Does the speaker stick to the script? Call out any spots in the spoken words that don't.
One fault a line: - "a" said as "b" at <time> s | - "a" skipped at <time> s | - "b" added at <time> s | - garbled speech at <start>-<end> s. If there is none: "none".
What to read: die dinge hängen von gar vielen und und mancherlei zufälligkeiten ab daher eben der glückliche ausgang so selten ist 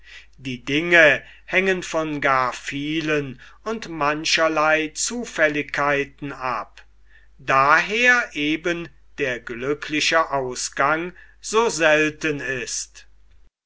- "und" skipped at 3.9 s